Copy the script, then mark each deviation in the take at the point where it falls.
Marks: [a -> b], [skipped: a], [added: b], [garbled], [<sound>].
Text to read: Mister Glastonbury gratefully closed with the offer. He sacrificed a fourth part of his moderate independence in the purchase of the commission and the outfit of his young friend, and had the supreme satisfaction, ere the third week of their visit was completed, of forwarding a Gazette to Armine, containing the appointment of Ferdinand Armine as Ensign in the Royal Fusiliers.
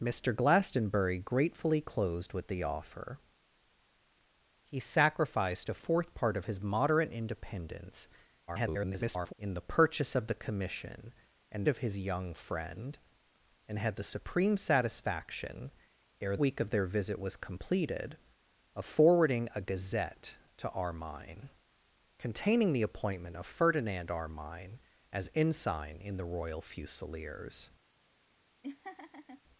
Mister Glastonbury gratefully closed with the offer. He sacrificed a fourth part of his moderate independence [garbled] in the purchase of the commission and [skipped: the outfit] of his young friend, and had the supreme satisfaction, ere [skipped: the third] week of their visit was completed, of forwarding a Gazette to Armine, containing the appointment of Ferdinand Armine as Ensign in the Royal Fusiliers. [laugh]